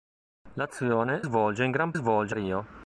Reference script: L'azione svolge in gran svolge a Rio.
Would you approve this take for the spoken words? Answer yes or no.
yes